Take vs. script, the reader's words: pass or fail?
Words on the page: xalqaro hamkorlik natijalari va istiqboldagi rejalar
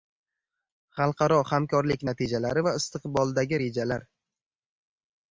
pass